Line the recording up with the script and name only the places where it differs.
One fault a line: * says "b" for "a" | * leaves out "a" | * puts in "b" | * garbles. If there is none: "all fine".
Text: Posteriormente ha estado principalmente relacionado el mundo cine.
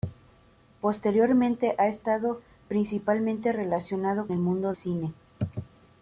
all fine